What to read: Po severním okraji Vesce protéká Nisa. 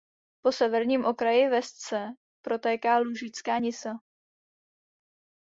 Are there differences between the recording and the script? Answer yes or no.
yes